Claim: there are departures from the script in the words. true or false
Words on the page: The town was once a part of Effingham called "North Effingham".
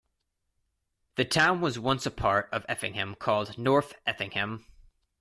false